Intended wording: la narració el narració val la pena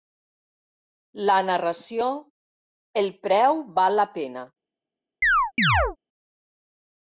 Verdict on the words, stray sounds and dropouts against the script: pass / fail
fail